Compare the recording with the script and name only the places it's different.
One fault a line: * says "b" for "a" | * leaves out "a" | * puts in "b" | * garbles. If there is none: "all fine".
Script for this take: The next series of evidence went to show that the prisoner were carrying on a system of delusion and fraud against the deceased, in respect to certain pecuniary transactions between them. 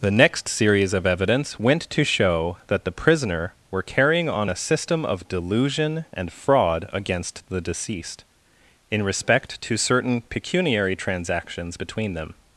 all fine